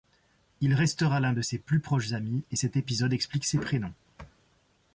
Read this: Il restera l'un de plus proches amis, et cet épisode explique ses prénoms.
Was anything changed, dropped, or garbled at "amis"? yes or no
no